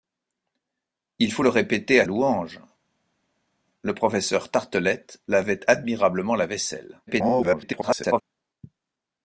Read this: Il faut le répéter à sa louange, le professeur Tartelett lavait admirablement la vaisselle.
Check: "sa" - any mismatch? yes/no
yes